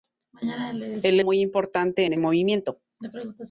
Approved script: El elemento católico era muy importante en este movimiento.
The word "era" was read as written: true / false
false